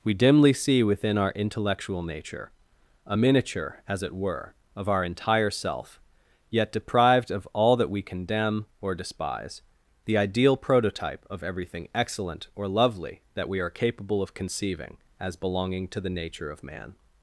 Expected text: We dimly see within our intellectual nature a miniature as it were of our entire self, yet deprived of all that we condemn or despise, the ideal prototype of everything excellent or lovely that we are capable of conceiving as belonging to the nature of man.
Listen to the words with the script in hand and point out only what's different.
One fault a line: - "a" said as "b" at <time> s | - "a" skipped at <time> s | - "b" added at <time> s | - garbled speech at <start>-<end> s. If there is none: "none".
none